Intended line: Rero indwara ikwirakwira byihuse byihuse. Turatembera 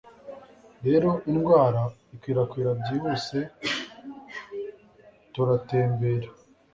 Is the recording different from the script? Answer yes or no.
yes